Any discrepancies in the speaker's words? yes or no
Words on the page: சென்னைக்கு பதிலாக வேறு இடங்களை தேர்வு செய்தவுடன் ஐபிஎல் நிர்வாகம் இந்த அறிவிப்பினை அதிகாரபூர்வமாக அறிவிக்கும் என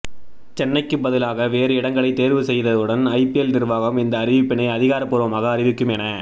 no